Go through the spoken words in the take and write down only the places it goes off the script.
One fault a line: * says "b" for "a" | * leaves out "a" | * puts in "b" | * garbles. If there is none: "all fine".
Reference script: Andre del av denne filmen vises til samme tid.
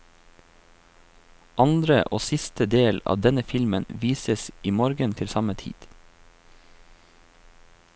* puts in "og siste"
* puts in "i morgen"